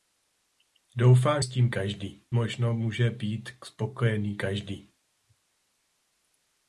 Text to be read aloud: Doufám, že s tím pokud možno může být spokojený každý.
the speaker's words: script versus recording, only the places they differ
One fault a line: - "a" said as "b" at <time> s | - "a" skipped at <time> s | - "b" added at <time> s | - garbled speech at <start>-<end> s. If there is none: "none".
- "že" skipped at 1.4 s
- "pokud" said as "každý" at 1.7 s